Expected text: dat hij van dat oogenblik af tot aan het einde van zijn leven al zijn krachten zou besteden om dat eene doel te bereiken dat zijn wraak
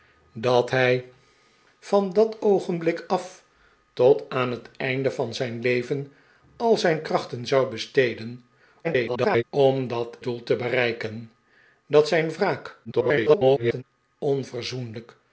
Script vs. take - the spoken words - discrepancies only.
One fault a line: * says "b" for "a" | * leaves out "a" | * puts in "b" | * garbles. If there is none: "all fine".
* garbles
* leaves out "eene"
* garbles